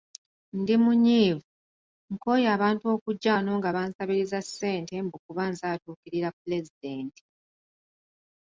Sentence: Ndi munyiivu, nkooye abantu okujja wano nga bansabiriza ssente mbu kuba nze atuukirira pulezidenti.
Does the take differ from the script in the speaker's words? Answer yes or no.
no